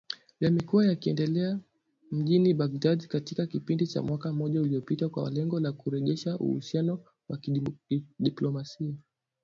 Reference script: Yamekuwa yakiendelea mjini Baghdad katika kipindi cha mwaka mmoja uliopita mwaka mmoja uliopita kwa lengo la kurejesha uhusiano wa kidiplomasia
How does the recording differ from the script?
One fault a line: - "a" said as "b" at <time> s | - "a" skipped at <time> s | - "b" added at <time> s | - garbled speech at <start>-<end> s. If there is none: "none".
- "mwaka mmoja uliopita" skipped at 5.1 s